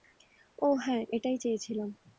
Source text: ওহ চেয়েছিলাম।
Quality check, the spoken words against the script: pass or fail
fail